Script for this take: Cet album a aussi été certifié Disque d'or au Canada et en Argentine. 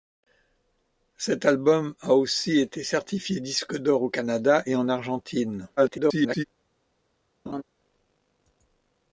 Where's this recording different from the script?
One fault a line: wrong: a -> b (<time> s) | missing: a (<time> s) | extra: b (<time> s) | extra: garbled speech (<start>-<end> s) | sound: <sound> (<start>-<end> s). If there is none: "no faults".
extra: garbled speech (5.8-6.4 s)
sound: laugh (7.5-7.6 s)